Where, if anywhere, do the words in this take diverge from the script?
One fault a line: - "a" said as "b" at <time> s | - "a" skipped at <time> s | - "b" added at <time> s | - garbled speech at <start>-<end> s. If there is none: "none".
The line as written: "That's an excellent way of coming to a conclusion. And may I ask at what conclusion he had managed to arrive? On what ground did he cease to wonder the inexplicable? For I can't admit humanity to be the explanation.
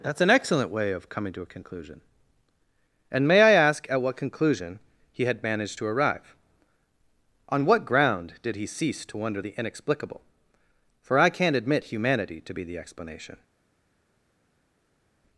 none